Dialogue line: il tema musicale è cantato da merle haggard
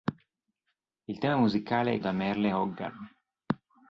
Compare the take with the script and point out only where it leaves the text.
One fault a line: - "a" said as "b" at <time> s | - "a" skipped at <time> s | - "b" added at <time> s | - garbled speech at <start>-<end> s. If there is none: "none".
- "cantato" skipped at 2.0 s